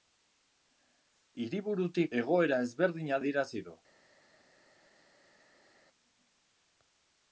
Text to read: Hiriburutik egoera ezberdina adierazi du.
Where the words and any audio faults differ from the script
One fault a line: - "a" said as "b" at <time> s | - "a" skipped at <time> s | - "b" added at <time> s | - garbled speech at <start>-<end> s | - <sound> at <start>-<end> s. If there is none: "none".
none